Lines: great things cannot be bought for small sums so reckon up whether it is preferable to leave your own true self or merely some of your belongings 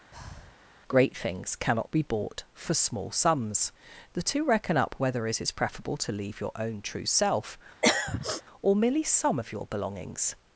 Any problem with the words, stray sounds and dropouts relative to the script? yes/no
yes